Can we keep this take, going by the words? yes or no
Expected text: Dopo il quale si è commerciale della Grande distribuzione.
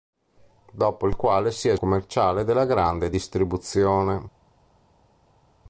yes